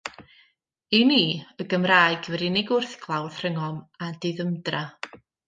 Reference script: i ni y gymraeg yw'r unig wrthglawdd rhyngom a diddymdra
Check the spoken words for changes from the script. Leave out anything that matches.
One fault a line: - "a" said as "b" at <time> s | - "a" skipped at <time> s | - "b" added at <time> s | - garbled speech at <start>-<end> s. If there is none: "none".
none